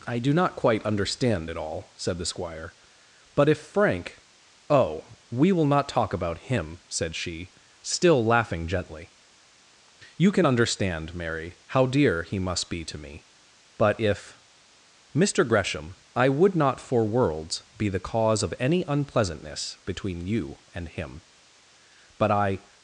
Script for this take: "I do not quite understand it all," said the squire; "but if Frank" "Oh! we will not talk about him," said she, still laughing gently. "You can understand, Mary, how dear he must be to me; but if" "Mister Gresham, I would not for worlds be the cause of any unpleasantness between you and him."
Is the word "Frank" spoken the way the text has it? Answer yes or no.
yes